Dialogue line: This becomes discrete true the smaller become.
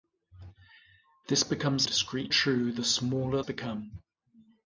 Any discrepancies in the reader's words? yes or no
no